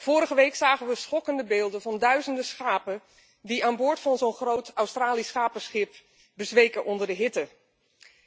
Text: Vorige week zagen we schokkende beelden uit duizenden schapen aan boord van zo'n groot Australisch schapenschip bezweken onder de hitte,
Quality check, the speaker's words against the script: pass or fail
fail